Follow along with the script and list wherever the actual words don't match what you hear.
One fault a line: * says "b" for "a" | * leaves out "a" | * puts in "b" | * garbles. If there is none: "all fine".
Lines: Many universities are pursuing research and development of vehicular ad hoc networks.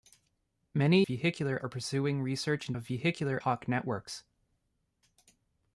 * says "vehicular" for "universities"
* leaves out "development"
* leaves out "ad"